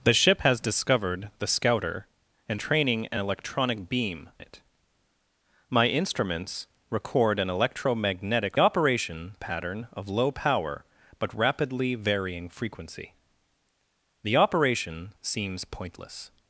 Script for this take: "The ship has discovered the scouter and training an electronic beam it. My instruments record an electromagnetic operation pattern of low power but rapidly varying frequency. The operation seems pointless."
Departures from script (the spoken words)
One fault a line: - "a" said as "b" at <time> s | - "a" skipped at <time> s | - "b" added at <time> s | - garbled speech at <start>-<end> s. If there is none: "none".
none